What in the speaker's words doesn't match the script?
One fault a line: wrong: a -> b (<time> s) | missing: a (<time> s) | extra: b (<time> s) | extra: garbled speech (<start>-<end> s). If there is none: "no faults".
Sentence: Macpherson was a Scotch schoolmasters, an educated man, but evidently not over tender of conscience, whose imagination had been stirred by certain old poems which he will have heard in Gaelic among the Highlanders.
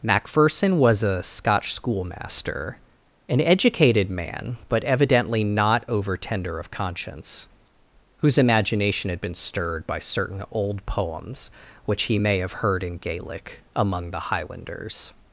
wrong: schoolmasters -> schoolmaster (1.7 s)
wrong: will -> may (12.1 s)